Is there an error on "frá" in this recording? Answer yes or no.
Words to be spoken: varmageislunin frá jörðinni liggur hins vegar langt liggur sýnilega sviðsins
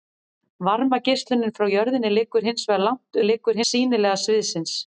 no